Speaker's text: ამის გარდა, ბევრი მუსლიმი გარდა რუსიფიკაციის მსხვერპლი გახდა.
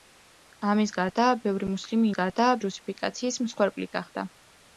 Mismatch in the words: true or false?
false